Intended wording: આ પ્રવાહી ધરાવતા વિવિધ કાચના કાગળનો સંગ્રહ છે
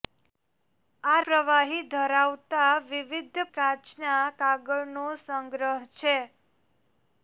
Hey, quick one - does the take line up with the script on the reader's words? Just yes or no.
yes